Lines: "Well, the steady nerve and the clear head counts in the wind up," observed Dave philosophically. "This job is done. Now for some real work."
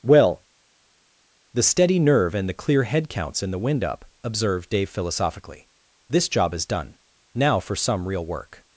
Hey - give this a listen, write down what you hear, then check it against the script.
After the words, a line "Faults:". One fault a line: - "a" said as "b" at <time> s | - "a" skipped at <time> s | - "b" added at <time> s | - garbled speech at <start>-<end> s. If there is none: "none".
"Well, the steady nerve and the clear head counts in the wind up," observed Dave philosophically. "This job is done. Now for some real work."
Faults:
none